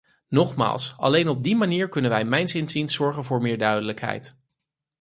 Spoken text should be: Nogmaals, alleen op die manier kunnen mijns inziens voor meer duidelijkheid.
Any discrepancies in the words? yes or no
yes